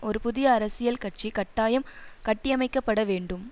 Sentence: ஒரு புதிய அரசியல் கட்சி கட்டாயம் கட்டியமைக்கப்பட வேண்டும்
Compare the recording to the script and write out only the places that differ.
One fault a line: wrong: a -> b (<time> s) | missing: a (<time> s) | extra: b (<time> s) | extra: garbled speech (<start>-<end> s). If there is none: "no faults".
no faults